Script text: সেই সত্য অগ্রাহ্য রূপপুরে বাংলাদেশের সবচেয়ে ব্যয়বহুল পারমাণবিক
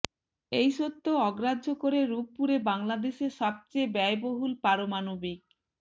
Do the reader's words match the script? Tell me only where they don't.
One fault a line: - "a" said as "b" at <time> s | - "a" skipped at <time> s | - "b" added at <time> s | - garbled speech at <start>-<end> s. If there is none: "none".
- "সেই" said as "এই" at 0.5 s
- "করে" added at 1.8 s